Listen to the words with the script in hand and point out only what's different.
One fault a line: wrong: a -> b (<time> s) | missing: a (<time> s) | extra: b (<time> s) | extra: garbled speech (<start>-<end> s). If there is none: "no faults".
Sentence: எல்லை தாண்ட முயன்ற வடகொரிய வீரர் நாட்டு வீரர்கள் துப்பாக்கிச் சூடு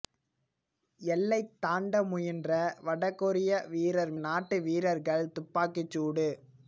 no faults